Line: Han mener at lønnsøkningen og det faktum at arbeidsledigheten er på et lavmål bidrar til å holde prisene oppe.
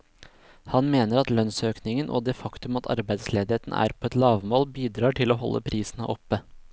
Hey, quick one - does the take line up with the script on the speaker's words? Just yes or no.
yes